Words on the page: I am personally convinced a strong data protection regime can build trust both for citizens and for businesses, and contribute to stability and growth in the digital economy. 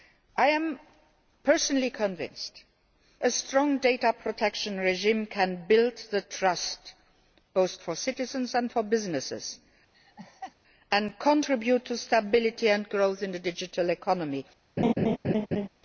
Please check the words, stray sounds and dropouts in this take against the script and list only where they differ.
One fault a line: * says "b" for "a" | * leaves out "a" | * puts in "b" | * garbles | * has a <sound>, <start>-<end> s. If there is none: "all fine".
* has a laugh, 9.9-10.6 s
* has a laugh, 14.8-15.7 s